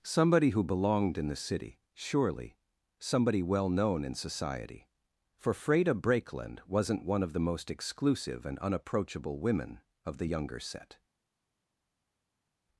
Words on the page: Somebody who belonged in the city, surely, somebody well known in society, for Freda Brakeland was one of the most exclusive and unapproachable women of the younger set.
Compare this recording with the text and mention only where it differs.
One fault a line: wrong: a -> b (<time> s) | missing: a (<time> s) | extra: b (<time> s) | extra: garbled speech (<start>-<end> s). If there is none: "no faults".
wrong: was -> wasn't (6.7 s)